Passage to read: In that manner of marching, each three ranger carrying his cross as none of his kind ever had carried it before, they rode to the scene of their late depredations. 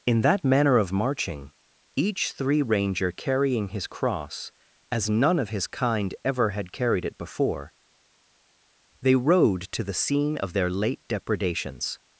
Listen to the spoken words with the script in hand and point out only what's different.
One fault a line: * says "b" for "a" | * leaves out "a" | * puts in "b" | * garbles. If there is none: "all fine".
all fine